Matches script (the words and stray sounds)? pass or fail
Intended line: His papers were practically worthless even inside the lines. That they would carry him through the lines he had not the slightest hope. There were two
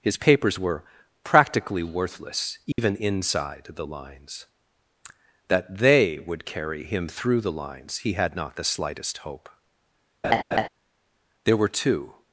fail